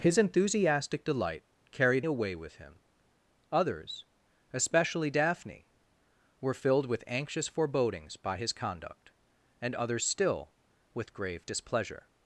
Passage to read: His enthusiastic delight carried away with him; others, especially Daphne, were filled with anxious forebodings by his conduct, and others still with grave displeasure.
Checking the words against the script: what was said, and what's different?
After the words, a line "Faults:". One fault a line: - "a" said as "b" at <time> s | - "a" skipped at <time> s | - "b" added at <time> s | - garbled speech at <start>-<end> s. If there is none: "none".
His enthusiastic delight carried away with him; others, especially Daphne, were filled with anxious forebodings by his conduct, and others still with grave displeasure.
Faults:
none